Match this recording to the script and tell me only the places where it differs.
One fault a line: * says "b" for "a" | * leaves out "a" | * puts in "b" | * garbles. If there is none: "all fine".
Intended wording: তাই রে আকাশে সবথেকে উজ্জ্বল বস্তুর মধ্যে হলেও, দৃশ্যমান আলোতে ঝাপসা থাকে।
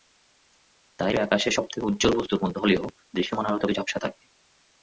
all fine